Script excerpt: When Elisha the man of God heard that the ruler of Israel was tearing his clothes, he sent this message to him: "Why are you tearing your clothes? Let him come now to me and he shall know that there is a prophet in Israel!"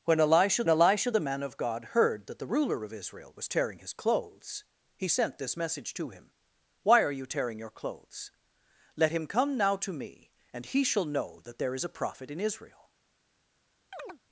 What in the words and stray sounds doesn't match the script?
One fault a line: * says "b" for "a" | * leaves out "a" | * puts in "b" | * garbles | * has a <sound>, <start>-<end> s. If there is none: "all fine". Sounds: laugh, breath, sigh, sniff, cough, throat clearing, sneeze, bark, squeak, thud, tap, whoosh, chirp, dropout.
* puts in "Elisha"
* has a chirp, 13.9-14.2 s